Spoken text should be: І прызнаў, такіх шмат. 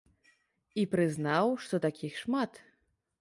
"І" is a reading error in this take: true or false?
false